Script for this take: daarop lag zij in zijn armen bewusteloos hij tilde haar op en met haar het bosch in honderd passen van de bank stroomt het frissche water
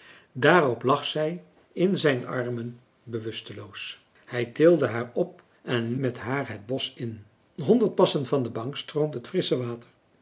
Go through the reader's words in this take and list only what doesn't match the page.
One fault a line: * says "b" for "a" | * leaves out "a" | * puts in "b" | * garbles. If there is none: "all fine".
all fine